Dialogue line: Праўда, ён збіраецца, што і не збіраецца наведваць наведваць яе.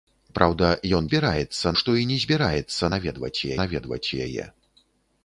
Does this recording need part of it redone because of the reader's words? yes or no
no